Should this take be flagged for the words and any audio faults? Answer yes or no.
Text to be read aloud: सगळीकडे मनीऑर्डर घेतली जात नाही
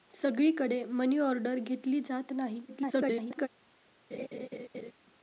yes